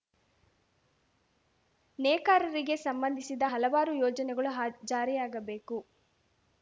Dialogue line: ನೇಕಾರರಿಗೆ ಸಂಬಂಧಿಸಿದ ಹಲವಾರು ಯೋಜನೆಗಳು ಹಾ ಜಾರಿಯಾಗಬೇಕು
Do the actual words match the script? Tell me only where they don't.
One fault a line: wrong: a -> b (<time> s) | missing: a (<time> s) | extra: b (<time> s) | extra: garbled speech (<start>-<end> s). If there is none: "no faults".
no faults